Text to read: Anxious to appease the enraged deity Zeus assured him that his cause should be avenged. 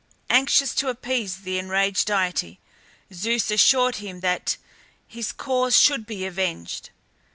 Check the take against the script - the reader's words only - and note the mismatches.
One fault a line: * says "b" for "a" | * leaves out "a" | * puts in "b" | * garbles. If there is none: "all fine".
all fine